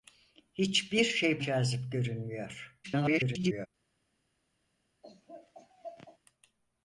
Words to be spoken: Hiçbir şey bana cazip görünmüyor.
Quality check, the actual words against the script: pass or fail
fail